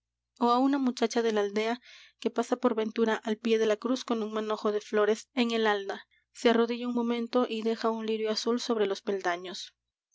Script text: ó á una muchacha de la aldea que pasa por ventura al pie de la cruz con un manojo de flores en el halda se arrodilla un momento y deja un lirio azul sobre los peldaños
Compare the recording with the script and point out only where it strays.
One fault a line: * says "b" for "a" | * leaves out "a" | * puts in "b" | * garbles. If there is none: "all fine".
all fine